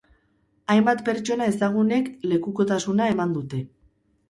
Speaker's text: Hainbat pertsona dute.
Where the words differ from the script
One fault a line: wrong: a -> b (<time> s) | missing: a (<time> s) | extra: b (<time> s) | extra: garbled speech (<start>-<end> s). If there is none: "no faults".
extra: ezagunek lekukotasuna eman (1.5 s)